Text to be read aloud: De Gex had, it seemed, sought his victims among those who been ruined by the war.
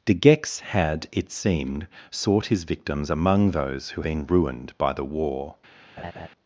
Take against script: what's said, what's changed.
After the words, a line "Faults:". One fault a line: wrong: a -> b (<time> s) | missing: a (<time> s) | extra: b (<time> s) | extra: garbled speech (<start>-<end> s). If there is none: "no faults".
De Gex had, it seemed, sought his victims among those who been ruined by the war.
Faults:
no faults